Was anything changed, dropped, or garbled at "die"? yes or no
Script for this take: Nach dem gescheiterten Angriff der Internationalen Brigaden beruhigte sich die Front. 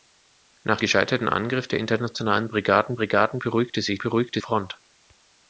yes